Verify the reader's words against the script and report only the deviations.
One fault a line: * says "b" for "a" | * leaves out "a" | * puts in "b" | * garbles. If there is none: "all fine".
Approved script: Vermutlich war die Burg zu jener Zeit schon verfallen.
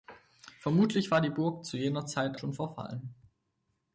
all fine